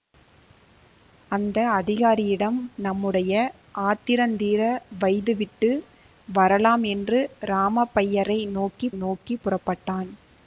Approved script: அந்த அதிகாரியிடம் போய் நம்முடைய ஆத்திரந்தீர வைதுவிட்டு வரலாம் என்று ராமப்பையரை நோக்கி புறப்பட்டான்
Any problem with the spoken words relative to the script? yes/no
yes